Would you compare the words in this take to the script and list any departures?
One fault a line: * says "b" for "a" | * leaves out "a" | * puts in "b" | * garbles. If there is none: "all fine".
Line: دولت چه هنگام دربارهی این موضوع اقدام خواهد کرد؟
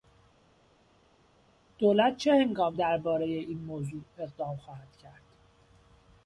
all fine